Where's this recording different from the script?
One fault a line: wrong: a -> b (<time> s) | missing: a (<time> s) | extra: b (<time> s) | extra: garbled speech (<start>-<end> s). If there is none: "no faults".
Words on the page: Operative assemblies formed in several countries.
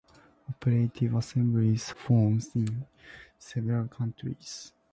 no faults